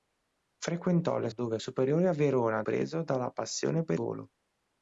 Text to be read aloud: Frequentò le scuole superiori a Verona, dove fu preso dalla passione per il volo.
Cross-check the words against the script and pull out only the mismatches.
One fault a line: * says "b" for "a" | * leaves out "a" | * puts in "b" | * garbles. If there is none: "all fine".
* says "dove" for "scuole"
* leaves out "dove fu"
* leaves out "il"